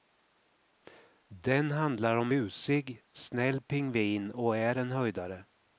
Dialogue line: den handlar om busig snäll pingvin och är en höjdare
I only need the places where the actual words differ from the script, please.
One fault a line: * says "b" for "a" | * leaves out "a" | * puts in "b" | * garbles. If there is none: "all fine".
all fine